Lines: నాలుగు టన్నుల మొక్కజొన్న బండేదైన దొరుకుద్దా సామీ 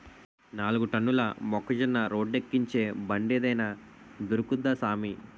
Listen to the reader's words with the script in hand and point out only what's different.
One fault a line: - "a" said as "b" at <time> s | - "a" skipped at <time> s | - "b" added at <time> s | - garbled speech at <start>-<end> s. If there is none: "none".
- "రోడ్డేక్కించే" added at 2.1 s